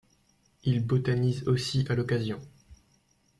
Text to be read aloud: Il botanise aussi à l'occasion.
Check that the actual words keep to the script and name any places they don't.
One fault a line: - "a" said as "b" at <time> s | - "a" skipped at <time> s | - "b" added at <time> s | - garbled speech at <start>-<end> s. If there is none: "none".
none